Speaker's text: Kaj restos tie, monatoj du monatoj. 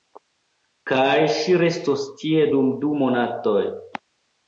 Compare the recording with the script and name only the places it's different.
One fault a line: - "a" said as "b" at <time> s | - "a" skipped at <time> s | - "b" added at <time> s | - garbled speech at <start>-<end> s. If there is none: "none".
- "ŝi" added at 1.4 s
- "monatoj" said as "dum" at 2.5 s